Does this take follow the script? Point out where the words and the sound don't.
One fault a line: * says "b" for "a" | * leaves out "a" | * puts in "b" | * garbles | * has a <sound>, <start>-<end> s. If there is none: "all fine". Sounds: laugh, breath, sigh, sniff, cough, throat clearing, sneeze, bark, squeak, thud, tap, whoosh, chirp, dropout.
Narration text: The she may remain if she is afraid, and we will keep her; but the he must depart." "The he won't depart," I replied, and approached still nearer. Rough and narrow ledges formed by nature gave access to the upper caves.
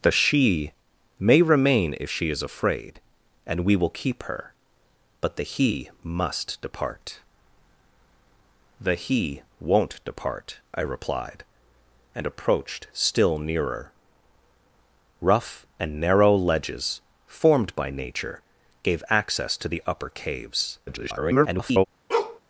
* garbles
* has a bark, 22.1-22.4 s